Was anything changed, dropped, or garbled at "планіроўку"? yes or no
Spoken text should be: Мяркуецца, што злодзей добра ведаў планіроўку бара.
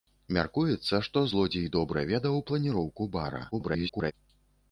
no